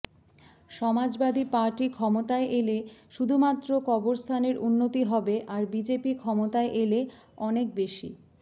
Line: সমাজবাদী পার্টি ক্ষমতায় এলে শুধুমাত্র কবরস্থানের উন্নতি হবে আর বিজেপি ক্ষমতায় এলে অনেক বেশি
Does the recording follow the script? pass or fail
pass